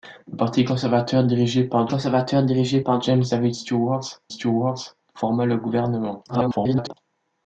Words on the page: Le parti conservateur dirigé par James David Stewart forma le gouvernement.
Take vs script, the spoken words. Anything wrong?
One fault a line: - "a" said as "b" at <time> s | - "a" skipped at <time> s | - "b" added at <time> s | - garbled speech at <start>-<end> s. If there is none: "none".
- "conservateur dirigé par" added at 1.9 s
- "Stewart" added at 4.3 s
- garbled speech at 6.3-6.9 s